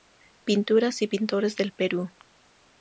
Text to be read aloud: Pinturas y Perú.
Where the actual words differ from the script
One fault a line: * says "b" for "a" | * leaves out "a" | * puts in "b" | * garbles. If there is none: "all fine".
* puts in "Pintores del"